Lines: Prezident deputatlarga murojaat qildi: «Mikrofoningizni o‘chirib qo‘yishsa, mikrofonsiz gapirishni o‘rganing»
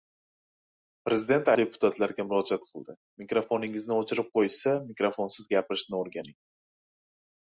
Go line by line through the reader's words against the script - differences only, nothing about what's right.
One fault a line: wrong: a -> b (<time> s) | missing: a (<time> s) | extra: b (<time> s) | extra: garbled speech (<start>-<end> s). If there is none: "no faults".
no faults